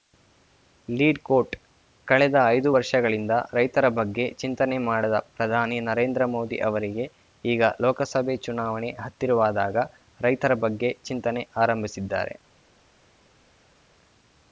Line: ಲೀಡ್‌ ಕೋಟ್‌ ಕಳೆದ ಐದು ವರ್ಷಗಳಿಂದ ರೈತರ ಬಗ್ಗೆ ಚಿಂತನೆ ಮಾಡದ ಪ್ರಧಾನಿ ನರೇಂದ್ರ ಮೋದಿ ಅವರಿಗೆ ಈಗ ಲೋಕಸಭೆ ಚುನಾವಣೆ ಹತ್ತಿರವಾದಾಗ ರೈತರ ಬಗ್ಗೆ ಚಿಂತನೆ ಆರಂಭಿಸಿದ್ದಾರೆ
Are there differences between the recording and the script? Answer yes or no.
no